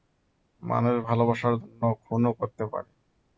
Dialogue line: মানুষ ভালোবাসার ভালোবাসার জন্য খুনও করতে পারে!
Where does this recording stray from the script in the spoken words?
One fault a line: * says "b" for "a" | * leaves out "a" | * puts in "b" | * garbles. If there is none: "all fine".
* leaves out "ভালোবাসার"